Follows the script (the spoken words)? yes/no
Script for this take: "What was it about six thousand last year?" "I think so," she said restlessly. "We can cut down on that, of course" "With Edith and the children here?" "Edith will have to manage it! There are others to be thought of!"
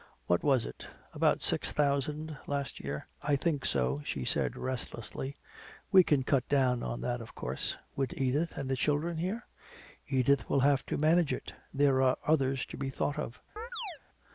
yes